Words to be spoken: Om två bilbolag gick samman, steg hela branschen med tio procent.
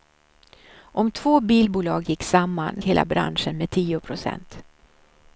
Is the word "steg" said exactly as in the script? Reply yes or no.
no